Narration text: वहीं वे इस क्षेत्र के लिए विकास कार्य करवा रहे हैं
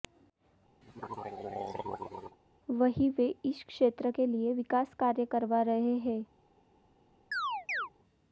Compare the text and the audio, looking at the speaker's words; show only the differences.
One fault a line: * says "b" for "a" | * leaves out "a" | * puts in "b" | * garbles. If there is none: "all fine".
all fine